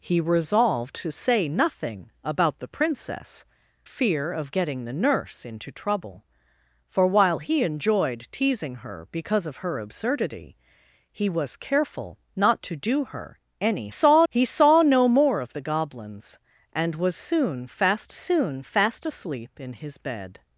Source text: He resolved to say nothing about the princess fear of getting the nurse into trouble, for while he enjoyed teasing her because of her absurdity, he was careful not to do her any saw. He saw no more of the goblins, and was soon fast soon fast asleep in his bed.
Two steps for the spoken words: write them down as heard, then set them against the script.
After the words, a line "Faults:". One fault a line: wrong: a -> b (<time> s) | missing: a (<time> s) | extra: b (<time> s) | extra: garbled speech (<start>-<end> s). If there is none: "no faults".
He resolved to say nothing about the princess fear of getting the nurse into trouble, for while he enjoyed teasing her because of her absurdity, he was careful not to do her any saw. He saw no more of the goblins, and was soon fast soon fast asleep in his bed.
Faults:
no faults